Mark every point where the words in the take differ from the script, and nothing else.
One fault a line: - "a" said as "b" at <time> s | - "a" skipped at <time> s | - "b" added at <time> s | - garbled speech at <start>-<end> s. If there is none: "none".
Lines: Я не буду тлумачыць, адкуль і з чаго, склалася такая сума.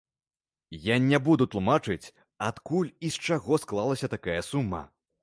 none